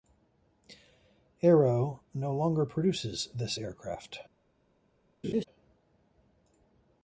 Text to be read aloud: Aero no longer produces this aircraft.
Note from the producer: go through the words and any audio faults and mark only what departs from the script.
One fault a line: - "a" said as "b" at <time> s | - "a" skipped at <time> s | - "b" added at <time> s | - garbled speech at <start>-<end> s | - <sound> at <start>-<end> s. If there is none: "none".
- laugh at 5.2-5.4 s